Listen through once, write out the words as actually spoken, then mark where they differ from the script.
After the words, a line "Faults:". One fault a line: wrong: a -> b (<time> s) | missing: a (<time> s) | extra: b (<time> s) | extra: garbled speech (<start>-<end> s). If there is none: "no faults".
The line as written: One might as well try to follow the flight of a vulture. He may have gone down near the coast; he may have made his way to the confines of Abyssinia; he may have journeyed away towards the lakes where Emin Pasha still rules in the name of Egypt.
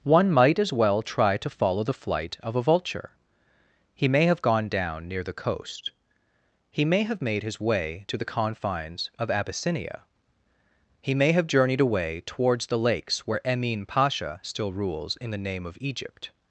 One might as well try to follow the flight of a vulture. He may have gone down near the coast; he may have made his way to the confines of Abyssinia; he may have journeyed away towards the lakes where Emin Pasha still rules in the name of Egypt.
Faults:
no faults